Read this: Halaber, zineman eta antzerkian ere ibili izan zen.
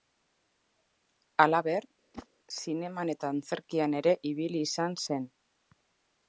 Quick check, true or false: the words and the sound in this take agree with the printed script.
false